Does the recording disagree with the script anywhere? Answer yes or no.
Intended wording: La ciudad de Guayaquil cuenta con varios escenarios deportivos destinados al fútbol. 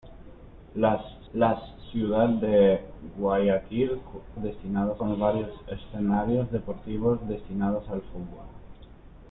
yes